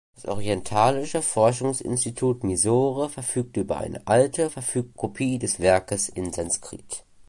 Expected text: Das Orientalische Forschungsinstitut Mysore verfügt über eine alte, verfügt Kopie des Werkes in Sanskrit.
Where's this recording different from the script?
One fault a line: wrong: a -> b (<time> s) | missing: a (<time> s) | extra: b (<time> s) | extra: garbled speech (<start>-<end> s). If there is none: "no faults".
no faults